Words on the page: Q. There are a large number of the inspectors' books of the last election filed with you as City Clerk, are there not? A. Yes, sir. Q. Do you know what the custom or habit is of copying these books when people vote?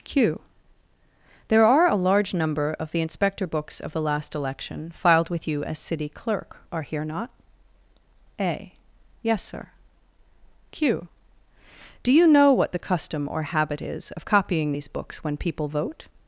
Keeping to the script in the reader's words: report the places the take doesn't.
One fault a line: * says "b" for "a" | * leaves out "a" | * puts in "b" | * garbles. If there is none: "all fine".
* says "inspector" for "inspectors"
* says "here" for "there"